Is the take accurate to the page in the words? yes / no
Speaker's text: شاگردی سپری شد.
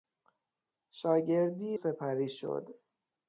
yes